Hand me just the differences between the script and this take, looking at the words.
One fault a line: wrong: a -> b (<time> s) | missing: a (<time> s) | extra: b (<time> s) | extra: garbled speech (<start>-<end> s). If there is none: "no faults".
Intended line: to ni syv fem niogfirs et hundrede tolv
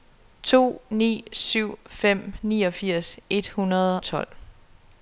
no faults